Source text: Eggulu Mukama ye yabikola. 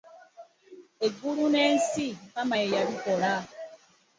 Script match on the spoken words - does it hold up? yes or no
no